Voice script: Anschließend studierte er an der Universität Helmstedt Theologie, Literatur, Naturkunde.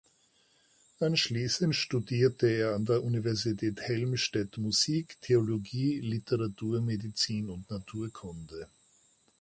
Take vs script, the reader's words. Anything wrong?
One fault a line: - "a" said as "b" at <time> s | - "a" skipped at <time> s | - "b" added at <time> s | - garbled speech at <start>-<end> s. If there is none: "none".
- "Musik" added at 4.6 s
- "Medizin und" added at 6.8 s